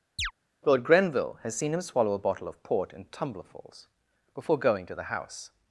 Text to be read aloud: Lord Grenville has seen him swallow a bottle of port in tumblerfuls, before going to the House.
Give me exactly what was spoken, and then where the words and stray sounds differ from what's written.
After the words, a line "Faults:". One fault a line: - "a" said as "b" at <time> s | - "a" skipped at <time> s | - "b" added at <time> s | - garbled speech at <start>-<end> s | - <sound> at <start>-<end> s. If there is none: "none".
Lord Grenville has seen him swallow a bottle of port in tumblerfuls, before going to the House.
Faults:
- chirp at 0.2-0.3 s